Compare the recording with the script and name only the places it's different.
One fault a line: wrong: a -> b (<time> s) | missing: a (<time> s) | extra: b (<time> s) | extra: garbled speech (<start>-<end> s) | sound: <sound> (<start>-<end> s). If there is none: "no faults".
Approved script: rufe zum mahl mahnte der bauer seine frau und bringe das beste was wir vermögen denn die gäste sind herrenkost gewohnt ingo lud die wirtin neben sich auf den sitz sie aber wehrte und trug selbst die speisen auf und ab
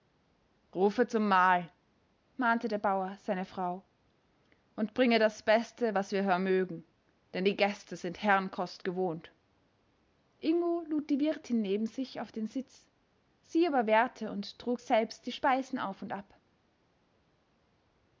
no faults